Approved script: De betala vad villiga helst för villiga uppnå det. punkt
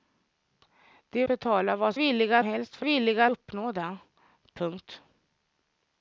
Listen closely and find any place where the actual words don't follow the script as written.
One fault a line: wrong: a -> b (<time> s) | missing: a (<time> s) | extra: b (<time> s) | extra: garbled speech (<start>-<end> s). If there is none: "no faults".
no faults